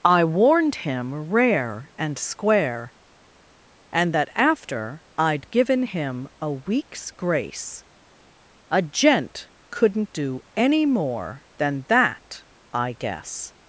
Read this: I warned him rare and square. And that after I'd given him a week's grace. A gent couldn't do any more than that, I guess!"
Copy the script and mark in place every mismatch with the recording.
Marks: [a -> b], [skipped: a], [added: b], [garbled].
I warned him rare and square. And that after I'd given him a week's grace. A gent couldn't do any more than that, I guess!"